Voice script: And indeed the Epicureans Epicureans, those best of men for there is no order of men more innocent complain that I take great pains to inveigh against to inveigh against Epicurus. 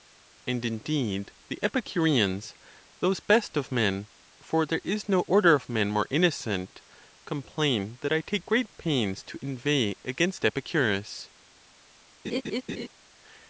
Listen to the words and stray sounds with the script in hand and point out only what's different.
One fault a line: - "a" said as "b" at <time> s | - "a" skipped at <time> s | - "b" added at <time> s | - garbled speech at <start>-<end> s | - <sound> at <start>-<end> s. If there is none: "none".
- "Epicureans" skipped at 2.5 s
- "to inveigh against" skipped at 10.4 s
- laugh at 12.2-12.9 s